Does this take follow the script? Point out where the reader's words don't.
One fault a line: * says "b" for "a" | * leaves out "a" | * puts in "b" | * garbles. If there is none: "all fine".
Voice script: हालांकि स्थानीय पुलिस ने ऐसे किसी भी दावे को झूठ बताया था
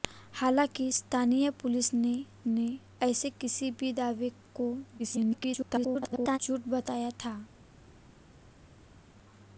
* puts in "ने"
* garbles